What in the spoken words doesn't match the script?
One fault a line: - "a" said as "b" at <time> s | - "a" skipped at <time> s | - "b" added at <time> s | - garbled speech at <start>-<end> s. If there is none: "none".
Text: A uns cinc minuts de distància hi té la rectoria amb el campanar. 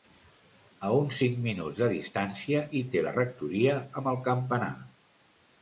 none